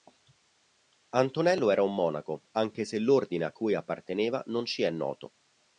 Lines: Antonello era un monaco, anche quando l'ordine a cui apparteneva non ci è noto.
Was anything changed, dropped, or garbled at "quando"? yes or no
yes